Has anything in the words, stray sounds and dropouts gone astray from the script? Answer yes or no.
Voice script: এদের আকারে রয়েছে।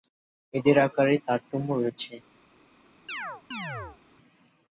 yes